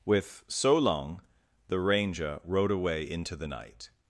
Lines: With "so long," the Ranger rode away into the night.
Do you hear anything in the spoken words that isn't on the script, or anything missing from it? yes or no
no